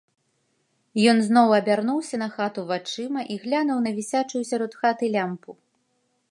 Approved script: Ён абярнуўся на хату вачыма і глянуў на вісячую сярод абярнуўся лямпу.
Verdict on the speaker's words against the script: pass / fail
fail